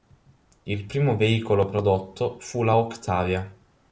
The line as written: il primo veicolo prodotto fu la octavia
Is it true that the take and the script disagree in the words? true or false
false